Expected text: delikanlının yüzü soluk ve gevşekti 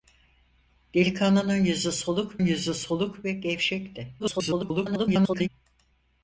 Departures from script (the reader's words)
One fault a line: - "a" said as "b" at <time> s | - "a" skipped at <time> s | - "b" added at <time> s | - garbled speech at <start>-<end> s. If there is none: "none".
- "yüzü soluk" added at 2.4 s
- garbled speech at 4.2-5.5 s